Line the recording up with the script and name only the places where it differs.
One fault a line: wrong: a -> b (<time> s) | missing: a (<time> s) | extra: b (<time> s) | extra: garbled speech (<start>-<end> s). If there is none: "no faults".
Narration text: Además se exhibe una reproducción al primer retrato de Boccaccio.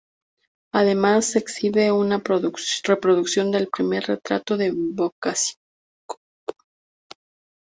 wrong: al -> del (3.5 s)